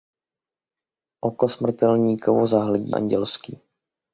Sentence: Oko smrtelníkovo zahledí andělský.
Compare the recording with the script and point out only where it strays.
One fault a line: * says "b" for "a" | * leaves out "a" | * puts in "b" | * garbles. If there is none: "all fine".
all fine